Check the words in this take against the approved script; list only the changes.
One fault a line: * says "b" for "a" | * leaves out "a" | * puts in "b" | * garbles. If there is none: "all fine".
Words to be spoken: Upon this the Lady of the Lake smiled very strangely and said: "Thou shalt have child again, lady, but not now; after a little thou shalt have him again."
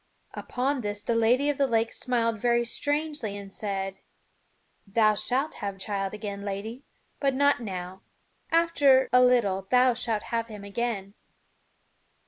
all fine